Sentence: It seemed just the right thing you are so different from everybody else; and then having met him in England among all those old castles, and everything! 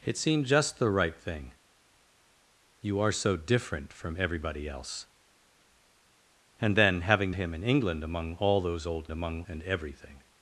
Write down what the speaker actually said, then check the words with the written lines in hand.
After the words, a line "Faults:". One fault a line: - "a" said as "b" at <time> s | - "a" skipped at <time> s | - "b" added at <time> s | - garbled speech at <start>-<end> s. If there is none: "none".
It seemed just the right thing you are so different from everybody else; and then having him in England among all those old among, and everything!
Faults:
- "met" skipped at 7.3 s
- "castles" said as "among" at 9.1 s